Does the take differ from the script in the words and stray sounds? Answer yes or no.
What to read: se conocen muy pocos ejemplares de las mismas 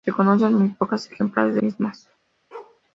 yes